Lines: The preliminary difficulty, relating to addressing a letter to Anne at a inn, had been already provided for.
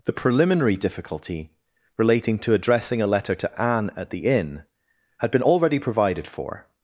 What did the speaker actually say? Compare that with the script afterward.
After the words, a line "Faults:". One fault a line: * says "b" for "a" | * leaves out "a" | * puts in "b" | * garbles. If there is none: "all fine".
The preliminary difficulty, relating to addressing a letter to Anne at the inn, had been already provided for.
Faults:
* says "the" for "a"